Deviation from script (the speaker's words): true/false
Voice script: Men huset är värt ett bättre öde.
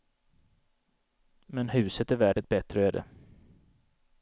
false